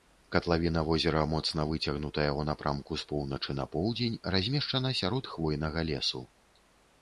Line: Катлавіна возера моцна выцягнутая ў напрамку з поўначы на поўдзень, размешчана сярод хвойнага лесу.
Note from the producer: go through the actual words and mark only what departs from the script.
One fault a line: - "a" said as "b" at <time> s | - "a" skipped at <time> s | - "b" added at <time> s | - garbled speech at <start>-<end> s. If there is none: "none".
none